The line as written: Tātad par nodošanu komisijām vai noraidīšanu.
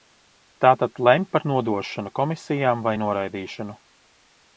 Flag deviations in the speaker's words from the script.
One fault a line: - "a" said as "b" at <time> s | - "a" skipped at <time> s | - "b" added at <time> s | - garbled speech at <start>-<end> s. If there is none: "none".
- "lemj" added at 1.1 s